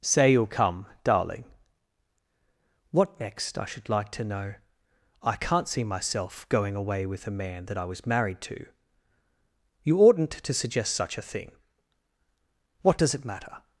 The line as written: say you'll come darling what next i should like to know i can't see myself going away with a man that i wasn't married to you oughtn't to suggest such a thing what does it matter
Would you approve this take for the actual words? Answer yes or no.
no